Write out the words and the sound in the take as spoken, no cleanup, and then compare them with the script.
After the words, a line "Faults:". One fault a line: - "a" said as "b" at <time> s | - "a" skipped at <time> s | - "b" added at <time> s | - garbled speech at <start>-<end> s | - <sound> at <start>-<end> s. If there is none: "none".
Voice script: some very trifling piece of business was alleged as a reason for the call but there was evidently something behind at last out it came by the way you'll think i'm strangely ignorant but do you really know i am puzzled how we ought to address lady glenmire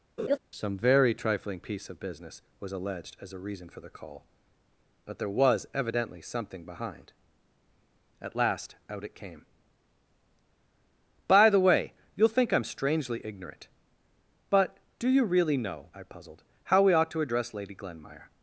some very trifling piece of business was alleged as a reason for the call but there was evidently something behind at last out it came by the way you'll think i'm strangely ignorant but do you really know i puzzled how we ought to address lady glenmire
Faults:
- laugh at 0.2-0.4 s
- "am" skipped at 16.0 s